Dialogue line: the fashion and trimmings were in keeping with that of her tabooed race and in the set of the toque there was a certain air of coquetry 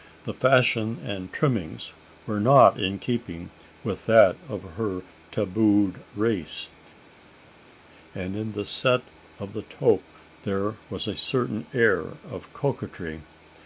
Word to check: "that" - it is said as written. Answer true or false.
true